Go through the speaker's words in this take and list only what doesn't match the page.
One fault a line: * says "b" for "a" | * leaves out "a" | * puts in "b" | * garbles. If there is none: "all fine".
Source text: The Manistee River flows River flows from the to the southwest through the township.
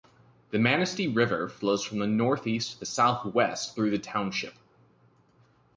* leaves out "River flows"
* puts in "northeast"